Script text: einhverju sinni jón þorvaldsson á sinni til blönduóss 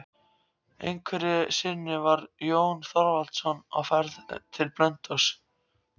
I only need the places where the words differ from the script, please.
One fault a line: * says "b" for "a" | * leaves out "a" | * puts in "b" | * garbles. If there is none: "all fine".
* puts in "var"
* says "ferð" for "sinni"